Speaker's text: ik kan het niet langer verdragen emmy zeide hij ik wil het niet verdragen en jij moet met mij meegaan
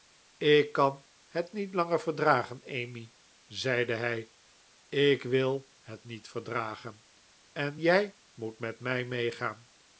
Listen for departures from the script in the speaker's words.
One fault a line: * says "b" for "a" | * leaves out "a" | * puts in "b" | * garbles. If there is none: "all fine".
all fine